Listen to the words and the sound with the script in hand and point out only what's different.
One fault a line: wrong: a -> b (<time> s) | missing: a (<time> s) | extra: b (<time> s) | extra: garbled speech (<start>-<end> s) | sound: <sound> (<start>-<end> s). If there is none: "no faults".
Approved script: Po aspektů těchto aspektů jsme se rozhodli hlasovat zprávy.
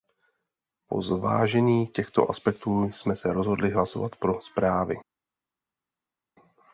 wrong: aspektů -> zvážení (1.0 s)
extra: pro (4.2 s)